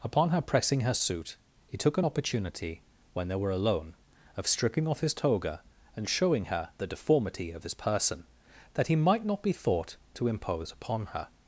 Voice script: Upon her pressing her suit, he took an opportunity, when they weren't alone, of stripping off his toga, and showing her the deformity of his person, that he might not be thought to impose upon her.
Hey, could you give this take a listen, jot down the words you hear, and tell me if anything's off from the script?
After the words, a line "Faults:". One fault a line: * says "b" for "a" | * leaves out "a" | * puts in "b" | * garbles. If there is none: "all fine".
Upon her pressing her suit, he took an opportunity, when they were alone, of stripping off his toga, and showing her the deformity of his person, that he might not be thought to impose upon her.
Faults:
* says "were" for "weren't"